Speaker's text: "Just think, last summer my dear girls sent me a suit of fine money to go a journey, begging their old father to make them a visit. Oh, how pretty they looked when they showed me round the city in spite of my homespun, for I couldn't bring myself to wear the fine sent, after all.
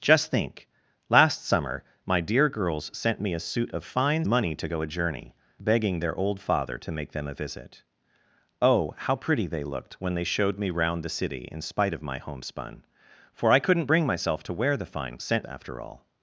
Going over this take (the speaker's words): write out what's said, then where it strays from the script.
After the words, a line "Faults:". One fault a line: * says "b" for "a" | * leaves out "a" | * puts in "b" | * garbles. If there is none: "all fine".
"Just think, last summer my dear girls sent me a suit of fine money to go a journey, begging their old father to make them a visit. Oh, how pretty they looked when they showed me round the city in spite of my homespun, for I couldn't bring myself to wear the fine sent, after all.
Faults:
all fine